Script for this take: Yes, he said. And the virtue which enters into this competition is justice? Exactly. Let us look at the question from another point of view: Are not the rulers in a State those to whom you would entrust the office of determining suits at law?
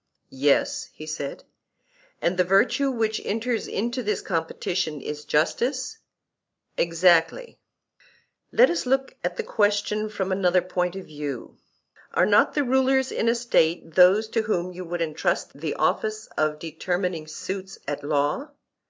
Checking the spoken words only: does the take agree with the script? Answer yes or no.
yes